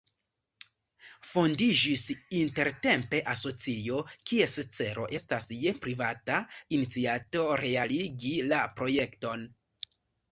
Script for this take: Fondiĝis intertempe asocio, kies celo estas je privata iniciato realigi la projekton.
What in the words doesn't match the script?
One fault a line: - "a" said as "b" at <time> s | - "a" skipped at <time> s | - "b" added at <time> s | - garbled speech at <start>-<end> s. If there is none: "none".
none